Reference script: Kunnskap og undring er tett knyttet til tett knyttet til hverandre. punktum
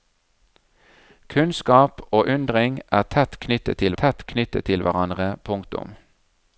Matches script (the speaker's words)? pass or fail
pass